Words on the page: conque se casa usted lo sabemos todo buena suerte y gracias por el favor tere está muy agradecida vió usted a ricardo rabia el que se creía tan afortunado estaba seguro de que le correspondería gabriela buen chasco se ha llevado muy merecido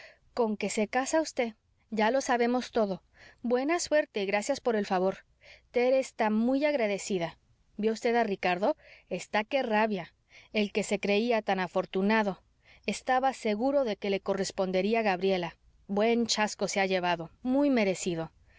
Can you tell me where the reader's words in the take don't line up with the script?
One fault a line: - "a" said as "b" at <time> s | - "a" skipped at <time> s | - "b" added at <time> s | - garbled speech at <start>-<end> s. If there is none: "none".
- "ya" added at 1.9 s
- "está que" added at 9.1 s